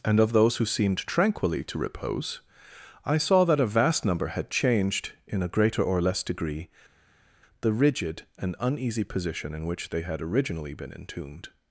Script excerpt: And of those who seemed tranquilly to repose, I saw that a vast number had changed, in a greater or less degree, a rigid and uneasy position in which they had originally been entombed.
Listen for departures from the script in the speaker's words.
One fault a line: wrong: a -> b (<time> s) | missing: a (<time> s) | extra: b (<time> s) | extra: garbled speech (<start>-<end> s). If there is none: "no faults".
wrong: a -> the (7.6 s)